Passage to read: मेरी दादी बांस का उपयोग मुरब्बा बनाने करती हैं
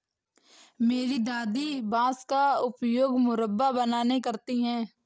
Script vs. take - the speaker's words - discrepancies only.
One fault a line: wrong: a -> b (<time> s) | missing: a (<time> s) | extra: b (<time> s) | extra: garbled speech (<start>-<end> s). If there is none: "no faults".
no faults